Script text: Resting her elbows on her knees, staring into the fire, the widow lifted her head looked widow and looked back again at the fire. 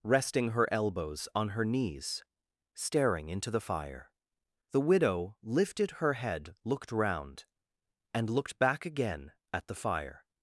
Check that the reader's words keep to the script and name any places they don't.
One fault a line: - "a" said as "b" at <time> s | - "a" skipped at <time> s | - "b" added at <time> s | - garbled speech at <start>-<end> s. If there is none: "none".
- "widow" said as "round" at 6.9 s